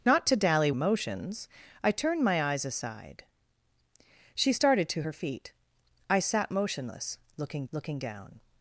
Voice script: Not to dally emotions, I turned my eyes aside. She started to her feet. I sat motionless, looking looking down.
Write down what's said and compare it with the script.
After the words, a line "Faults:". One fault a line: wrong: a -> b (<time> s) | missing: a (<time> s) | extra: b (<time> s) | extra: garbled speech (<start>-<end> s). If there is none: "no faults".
Not to dally emotions, I turned my eyes aside. She started to her feet. I sat motionless, looking looking down.
Faults:
no faults